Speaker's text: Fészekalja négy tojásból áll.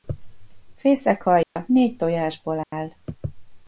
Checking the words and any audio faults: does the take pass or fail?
fail